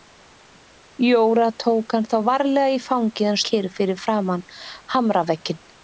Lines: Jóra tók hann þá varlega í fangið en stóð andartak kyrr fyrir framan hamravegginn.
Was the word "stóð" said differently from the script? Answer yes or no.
yes